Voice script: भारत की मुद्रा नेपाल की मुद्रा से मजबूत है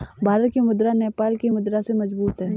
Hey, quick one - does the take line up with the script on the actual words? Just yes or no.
yes